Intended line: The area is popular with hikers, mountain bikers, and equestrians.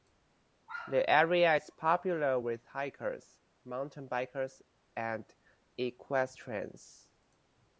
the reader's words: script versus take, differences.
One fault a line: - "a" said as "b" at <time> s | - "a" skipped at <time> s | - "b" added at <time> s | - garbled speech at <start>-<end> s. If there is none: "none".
none